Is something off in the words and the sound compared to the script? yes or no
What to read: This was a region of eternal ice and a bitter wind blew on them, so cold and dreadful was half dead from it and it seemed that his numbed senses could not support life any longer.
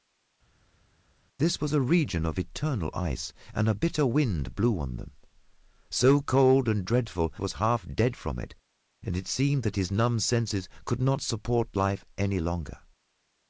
no